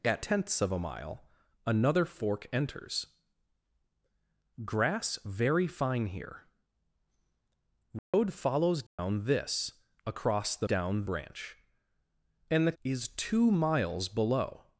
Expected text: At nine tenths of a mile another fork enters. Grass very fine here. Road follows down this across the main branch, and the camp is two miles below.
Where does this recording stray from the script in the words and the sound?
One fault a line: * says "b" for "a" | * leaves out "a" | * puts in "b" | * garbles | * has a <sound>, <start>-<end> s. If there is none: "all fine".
* leaves out "nine"
* has a dropout, 8.0-8.1 s
* has a dropout, 8.9-9.0 s
* says "down" for "main"
* leaves out "camp"